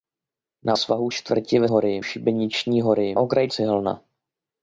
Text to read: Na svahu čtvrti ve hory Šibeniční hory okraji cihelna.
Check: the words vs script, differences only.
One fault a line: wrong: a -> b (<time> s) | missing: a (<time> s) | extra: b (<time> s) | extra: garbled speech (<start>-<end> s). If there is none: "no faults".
no faults